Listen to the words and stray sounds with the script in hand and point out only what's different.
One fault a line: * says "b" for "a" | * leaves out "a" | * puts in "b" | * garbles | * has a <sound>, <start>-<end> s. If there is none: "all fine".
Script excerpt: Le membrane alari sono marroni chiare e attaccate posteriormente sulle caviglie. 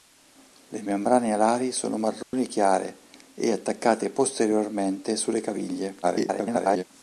* has a dropout, 2.2-2.3 s
* garbles